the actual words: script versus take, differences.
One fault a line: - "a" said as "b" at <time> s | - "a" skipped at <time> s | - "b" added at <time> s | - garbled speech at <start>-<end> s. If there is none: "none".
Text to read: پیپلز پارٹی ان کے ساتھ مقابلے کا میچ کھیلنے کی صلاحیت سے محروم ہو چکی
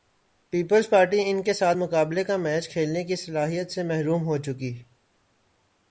none